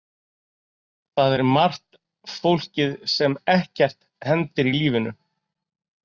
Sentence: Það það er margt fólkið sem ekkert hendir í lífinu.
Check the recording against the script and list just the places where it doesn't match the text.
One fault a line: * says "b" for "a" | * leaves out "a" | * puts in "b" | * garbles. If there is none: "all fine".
* leaves out "það"